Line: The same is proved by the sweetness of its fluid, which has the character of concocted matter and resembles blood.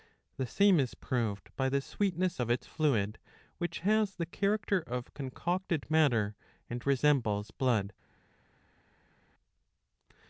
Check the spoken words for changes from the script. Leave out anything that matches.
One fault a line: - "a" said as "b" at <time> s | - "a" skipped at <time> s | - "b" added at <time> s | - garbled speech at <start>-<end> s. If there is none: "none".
none